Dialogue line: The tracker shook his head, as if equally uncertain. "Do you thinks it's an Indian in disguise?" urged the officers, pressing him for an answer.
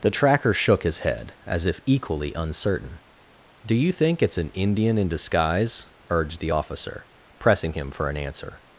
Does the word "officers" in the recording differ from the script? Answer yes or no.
yes